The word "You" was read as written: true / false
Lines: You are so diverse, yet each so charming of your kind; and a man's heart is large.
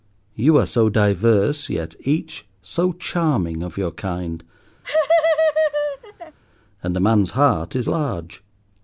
true